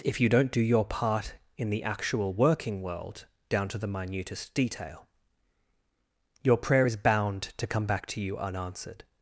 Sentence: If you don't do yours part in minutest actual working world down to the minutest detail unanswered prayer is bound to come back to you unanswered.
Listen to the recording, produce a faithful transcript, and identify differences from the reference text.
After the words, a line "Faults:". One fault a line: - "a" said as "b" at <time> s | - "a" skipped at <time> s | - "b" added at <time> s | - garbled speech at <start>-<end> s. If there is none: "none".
If you don't do your part in the actual working world down to the minutest detail your prayer is bound to come back to you unanswered.
Faults:
- "yours" said as "your" at 0.6 s
- "minutest" said as "the" at 1.7 s
- "unanswered" said as "your" at 6.4 s